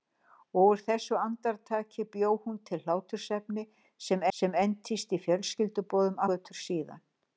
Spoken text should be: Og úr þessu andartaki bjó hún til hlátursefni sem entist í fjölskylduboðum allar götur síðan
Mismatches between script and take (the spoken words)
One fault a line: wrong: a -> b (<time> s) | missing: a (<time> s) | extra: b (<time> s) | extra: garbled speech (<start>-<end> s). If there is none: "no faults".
extra: sem (4.4 s)
missing: allar (6.2 s)